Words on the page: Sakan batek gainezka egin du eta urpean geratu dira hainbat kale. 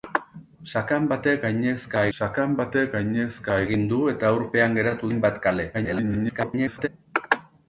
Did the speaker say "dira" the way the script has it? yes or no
no